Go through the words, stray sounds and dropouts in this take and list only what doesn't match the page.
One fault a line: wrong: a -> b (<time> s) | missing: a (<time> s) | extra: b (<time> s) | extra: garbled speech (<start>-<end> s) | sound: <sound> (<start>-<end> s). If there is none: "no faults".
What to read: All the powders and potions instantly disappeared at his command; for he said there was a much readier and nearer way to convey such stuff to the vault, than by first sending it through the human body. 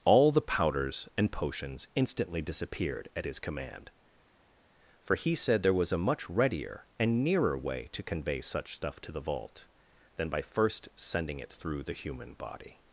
no faults